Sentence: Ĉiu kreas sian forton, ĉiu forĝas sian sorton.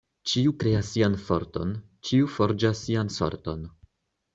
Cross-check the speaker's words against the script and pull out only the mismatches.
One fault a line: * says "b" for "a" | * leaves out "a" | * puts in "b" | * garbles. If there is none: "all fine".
all fine